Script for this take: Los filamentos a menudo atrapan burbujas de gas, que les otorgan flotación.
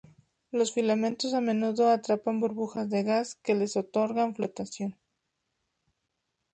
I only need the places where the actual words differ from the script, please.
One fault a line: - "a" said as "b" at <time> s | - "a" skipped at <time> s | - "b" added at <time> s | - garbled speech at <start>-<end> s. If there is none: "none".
none